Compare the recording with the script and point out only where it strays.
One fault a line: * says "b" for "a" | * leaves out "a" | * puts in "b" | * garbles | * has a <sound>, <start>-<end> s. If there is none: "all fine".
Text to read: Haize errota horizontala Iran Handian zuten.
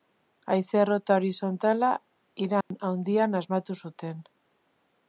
* has a dropout, 2.6-2.7 s
* puts in "asmatu"